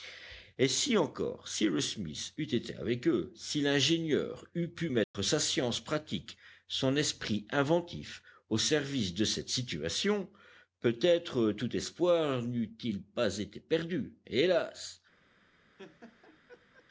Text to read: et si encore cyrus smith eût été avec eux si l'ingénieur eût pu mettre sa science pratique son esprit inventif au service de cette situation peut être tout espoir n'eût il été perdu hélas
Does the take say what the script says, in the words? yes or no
no